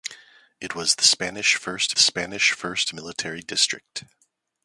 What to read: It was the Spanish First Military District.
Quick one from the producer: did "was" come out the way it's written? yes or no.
yes